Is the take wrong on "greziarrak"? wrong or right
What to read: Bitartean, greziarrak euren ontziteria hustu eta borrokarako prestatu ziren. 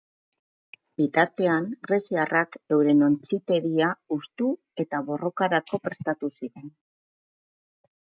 right